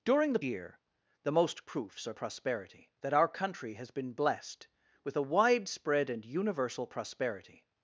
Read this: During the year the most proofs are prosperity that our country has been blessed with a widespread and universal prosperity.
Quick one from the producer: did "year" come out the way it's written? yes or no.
yes